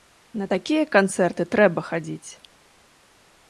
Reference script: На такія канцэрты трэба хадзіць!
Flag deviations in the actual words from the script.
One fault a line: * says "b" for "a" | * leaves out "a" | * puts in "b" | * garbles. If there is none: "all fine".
all fine